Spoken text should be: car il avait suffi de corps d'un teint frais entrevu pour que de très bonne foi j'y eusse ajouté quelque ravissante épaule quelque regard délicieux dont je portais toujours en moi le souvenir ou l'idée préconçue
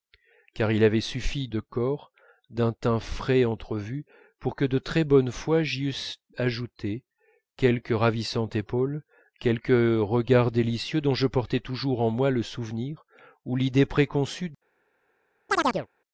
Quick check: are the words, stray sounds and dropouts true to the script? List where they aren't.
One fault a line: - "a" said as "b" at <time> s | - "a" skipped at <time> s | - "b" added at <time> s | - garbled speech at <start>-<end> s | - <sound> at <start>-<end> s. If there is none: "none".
- chirp at 15.5-15.9 s